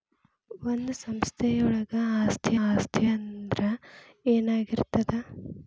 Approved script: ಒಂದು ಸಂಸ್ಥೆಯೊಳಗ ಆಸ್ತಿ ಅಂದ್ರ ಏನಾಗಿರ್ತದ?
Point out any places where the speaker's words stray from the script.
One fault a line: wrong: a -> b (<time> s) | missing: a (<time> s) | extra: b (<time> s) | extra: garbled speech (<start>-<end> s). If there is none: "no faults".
extra: ಆಸ್ತಿ (2.7 s)